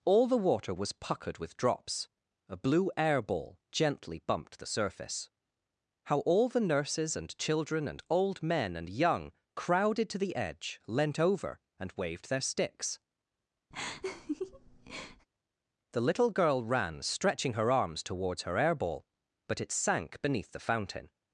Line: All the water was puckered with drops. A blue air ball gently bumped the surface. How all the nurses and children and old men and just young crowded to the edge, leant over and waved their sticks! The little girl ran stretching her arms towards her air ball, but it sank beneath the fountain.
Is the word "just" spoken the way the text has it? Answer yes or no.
no